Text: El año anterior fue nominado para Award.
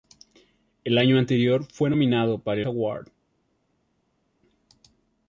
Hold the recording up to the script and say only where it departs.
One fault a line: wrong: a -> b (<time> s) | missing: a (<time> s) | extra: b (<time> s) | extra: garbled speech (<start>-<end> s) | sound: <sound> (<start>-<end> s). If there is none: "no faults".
no faults